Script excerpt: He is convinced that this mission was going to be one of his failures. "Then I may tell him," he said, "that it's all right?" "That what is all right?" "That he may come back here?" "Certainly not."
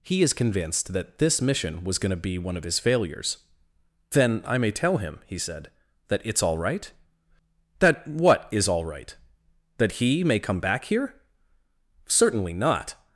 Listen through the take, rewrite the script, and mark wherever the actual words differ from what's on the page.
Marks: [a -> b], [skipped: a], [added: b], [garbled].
He is convinced that this mission was going to be one of his failures. "Then I may tell him," he said, "that it's all right?" "That what is all right?" "That he may come back here?" "Certainly not."